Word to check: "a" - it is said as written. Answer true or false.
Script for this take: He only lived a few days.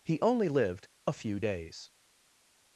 true